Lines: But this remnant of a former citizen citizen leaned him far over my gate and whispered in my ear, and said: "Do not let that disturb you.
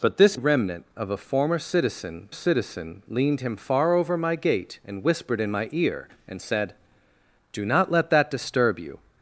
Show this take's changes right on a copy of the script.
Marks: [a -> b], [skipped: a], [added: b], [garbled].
But this remnant of a former citizen citizen leaned him far over my gate and whispered in my ear, and said: "Do not let that disturb you.